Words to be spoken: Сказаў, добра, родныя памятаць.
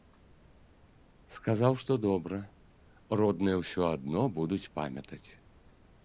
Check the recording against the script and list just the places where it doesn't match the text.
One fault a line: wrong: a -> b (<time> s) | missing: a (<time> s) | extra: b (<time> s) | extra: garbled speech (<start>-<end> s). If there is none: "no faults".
extra: што (1.8 s)
extra: ўсё адно будуць (3.6 s)